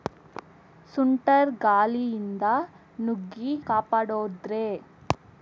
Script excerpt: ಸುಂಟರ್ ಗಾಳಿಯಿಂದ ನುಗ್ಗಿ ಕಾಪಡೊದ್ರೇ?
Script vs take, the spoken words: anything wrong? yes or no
no